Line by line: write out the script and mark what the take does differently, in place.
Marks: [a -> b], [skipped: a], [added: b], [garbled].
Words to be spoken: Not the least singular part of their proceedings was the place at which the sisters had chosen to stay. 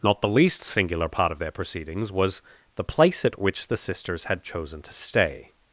Not the least singular part of their proceedings was the place at which the sisters had chosen to stay.